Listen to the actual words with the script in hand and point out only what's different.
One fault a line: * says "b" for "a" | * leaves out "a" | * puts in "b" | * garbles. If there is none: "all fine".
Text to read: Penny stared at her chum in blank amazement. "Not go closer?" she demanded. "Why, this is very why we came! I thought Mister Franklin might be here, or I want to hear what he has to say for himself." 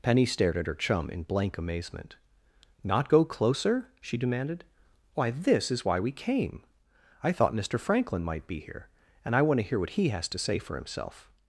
* leaves out "very"
* says "and" for "or"